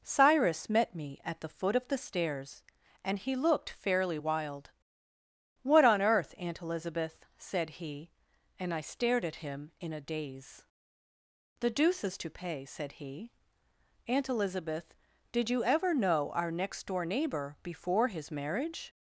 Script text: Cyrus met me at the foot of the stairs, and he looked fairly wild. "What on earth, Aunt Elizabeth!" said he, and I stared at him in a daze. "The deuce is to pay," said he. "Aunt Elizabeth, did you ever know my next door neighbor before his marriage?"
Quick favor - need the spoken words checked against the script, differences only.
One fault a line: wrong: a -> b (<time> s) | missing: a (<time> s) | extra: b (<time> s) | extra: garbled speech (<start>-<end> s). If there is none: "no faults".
wrong: my -> our (16.3 s)